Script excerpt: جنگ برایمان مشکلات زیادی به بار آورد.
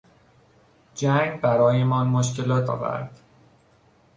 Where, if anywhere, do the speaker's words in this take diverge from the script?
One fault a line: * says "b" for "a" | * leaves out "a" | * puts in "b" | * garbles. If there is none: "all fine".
* leaves out "زیادی به بار"